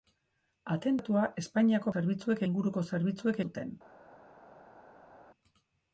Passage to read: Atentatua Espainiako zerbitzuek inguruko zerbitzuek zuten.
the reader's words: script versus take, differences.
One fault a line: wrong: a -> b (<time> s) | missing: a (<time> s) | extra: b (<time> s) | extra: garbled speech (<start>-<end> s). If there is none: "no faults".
no faults